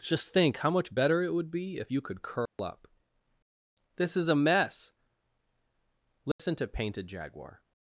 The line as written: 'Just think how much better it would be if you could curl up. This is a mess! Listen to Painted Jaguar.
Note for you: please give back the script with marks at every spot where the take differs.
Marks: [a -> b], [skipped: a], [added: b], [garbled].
'Just think how much better it would be if you could curl up. This is a mess! Listen to Painted Jaguar.